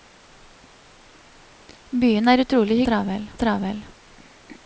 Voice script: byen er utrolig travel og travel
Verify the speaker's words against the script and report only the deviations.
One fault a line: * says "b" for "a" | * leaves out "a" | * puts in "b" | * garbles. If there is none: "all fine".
all fine